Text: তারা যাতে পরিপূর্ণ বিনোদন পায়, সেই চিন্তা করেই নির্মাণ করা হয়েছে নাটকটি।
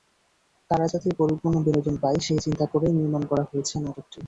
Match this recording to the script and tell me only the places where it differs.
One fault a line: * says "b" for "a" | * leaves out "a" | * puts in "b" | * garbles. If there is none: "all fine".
all fine